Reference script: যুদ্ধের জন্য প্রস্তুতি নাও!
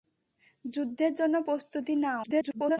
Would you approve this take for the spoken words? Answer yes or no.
no